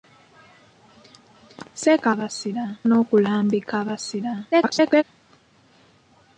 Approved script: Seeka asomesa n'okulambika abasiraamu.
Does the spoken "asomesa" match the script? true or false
false